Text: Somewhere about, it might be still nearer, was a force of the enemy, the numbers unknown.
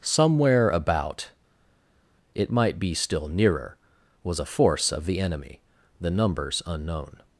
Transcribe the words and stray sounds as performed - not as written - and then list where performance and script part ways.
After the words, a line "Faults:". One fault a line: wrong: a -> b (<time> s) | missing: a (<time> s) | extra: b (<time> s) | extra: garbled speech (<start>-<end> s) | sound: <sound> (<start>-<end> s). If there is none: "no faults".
Somewhere about, it might be still nearer, was a force of the enemy, the numbers unknown.
Faults:
no faults